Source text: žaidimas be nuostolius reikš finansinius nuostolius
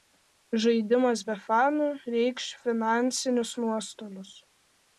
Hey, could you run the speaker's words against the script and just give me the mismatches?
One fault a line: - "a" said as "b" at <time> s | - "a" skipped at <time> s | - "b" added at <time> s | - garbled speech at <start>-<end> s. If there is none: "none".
- "nuostolius" said as "fanų" at 1.5 s